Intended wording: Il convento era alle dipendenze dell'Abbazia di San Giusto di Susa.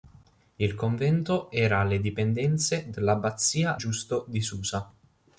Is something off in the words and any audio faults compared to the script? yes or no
yes